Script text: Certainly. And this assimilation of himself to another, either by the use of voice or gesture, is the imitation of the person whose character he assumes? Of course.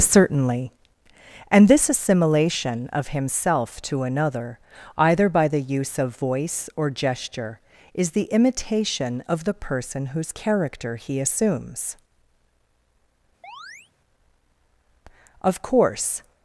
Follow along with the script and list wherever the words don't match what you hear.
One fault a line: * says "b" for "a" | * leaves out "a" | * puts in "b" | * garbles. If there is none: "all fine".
all fine